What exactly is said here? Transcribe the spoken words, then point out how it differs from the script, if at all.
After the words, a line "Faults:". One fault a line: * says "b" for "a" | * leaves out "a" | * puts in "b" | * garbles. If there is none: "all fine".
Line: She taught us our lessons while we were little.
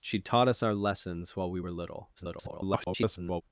She taught us our lessons while we were little. [garbled]
Faults:
* garbles